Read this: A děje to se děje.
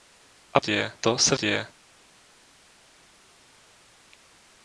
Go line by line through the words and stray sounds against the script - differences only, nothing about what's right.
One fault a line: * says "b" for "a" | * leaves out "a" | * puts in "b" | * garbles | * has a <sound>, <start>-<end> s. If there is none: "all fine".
all fine